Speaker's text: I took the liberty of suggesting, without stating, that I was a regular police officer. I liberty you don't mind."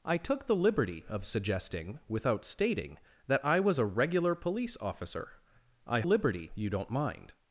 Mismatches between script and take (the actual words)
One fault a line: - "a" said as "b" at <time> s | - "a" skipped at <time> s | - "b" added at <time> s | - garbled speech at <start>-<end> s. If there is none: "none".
none